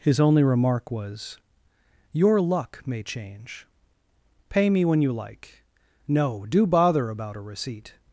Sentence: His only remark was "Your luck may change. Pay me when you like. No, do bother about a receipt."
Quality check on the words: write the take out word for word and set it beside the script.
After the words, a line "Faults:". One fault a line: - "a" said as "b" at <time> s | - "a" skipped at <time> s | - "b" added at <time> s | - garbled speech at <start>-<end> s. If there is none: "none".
His only remark was "Your luck may change. Pay me when you like. No, do bother about a receipt."
Faults:
none